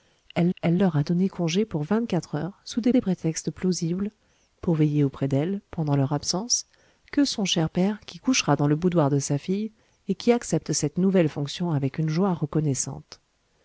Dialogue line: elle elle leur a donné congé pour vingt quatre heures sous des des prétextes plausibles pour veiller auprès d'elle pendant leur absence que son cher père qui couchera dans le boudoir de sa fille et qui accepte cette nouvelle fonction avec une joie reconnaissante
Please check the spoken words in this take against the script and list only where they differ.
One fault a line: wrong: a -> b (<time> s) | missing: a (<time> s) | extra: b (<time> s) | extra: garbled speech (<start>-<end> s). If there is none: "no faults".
no faults